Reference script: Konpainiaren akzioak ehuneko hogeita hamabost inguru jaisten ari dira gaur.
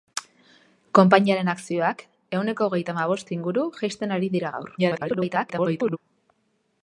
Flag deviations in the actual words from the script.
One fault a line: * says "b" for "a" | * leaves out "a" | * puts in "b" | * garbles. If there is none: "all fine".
* garbles